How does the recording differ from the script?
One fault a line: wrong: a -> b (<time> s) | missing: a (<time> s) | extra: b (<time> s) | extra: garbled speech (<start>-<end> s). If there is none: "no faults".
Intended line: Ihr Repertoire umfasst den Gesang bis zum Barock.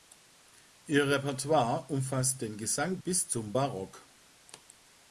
no faults